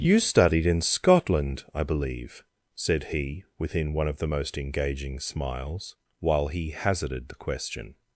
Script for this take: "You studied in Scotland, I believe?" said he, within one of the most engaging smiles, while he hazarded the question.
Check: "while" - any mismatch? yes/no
no